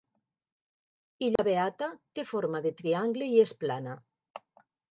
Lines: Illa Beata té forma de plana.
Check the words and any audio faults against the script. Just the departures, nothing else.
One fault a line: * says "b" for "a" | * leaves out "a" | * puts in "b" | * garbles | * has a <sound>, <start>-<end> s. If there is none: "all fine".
* has a dropout, 1.4-1.4 s
* puts in "triangle i és"